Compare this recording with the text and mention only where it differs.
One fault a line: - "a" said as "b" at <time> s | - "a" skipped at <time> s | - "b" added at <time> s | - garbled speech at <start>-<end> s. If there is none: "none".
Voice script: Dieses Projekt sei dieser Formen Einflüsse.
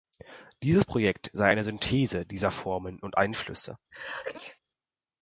- "eine Synthese" added at 1.5 s
- "und" added at 3.0 s